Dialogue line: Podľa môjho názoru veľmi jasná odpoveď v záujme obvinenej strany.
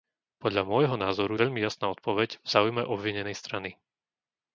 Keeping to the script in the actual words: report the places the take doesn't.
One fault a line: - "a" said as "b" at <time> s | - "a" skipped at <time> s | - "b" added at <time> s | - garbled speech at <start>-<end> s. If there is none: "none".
none